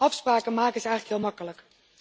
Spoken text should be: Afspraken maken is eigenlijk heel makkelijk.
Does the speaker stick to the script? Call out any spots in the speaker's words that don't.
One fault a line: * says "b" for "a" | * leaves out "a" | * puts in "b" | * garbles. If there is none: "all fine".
all fine